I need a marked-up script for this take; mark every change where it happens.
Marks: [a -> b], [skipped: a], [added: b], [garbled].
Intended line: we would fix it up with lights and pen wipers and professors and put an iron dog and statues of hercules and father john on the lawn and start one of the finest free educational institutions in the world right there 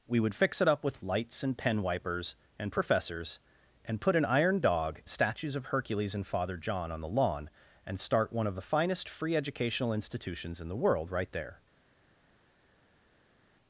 we would fix it up with lights and pen wipers and professors and put an iron dog [skipped: and] statues of hercules and father john on the lawn and start one of the finest free educational institutions in the world right there